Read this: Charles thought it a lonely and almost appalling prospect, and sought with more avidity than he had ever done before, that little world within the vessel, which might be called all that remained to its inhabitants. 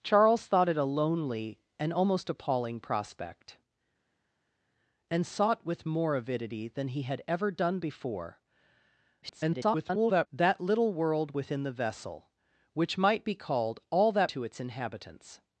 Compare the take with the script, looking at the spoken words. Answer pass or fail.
fail